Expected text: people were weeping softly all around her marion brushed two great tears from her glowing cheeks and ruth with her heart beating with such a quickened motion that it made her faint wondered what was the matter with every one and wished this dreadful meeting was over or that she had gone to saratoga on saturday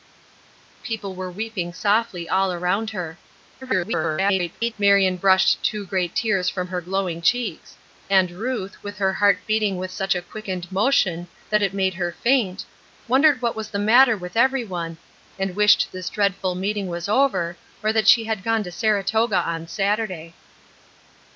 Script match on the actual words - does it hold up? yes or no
no